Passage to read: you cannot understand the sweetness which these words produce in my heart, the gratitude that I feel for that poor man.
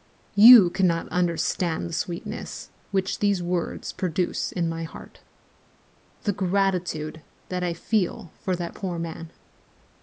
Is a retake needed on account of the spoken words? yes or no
no